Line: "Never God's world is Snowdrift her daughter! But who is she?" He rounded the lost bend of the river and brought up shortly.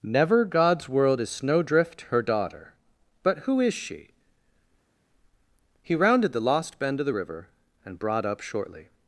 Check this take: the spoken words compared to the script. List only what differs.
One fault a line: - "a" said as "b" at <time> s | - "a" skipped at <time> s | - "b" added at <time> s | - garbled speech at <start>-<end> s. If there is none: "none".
none